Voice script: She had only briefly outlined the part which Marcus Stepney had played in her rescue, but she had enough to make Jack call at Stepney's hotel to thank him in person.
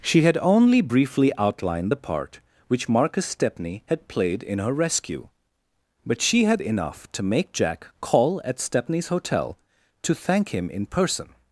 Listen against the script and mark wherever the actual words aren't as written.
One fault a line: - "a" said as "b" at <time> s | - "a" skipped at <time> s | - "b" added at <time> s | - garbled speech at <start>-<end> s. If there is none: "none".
none